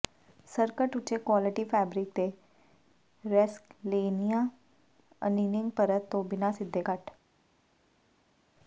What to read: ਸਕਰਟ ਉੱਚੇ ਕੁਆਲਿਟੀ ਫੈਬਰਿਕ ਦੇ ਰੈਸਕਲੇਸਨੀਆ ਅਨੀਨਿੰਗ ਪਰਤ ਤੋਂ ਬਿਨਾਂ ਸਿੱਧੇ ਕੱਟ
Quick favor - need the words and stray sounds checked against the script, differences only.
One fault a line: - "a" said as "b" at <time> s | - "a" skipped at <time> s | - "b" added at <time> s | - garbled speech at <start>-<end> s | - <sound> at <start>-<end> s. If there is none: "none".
none